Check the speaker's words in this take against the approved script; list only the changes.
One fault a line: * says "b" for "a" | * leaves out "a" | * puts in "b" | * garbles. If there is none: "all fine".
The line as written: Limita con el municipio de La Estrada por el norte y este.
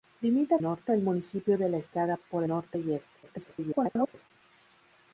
* says "norte" for "con"
* leaves out "el"
* garbles